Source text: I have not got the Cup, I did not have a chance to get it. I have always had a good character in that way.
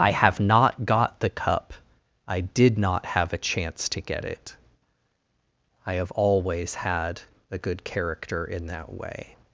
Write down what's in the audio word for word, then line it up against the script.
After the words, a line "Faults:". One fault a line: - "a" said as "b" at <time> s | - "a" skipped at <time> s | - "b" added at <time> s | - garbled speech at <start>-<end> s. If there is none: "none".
I have not got the Cup, I did not have a chance to get it. I have always had a good character in that way.
Faults:
none